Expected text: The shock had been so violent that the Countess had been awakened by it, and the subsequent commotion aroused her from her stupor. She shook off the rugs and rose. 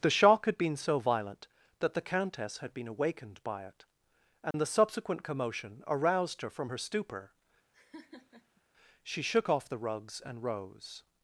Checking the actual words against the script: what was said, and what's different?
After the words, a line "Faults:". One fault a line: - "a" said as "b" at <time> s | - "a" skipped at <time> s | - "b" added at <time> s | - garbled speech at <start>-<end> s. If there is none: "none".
The shock had been so violent that the Countess had been awakened by it, and the subsequent commotion aroused her from her stupor. She shook off the rugs and rose.
Faults:
none